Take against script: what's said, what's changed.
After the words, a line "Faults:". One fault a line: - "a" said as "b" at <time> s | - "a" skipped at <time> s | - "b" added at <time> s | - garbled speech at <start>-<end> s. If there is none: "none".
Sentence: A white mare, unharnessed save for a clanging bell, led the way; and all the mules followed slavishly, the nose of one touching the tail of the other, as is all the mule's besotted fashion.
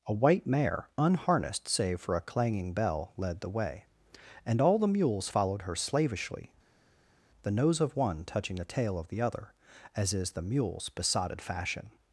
A white mare, unharnessed save for a clanging bell, led the way; and all the mules followed her slavishly, the nose of one touching the tail of the other, as is the mule's besotted fashion.
Faults:
- "her" added at 5.6 s
- "all" skipped at 10.3 s